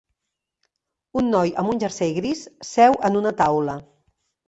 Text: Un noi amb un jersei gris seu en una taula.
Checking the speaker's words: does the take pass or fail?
pass